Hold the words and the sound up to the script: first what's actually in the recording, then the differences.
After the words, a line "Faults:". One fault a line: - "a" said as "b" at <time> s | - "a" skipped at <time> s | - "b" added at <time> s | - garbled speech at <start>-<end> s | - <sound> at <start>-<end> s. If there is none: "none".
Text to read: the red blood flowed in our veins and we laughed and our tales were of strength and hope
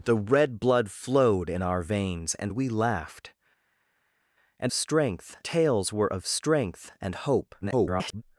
the red blood flowed in our veins and we laughed and strength tales were of strength and hope [garbled]
Faults:
- "our" said as "strength" at 4.7 s
- garbled speech at 7.6-8.2 s